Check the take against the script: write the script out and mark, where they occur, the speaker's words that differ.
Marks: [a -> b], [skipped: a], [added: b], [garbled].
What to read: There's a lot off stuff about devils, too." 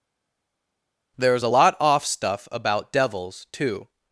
There's a lot off stuff about devils, too."